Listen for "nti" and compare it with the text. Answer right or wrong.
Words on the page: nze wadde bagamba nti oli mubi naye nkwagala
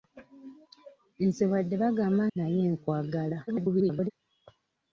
wrong